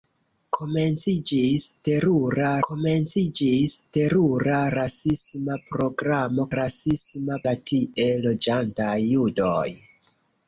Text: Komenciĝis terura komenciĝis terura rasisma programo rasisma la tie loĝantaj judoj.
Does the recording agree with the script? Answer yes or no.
yes